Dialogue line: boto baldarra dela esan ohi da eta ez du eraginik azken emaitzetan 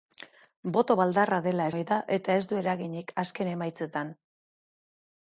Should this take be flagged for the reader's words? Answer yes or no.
yes